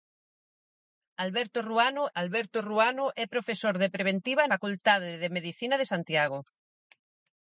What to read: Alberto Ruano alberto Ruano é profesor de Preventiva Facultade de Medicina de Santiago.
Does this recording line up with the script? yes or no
yes